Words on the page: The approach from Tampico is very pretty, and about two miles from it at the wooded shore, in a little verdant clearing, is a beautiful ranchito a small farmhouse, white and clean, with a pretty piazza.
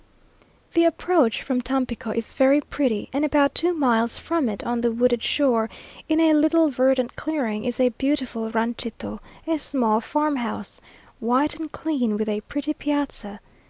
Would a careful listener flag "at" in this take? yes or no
yes